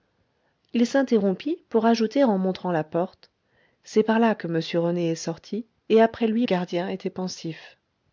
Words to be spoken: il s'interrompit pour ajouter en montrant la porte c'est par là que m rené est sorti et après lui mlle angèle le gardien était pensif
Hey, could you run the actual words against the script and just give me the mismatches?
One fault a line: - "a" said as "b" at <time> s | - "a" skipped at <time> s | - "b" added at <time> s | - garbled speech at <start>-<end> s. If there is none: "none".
- "mlle angèle le" skipped at 6.5 s